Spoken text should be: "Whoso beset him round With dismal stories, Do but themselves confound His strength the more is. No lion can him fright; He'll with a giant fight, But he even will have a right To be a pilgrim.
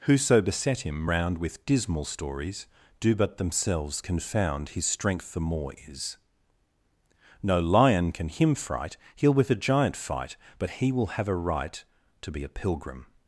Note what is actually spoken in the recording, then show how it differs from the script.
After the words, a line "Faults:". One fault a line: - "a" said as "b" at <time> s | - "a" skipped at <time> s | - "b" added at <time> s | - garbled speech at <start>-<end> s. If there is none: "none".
"Whoso beset him round With dismal stories, Do but themselves confound His strength the more is. No lion can him fright; He'll with a giant fight, But he will have a right To be a pilgrim.
Faults:
- "even" skipped at 10.9 s